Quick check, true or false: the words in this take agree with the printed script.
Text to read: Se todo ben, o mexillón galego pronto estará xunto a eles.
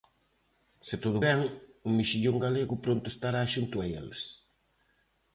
true